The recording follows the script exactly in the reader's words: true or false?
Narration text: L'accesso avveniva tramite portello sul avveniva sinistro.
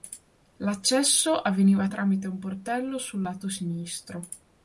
false